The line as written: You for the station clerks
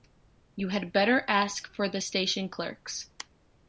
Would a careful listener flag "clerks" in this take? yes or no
no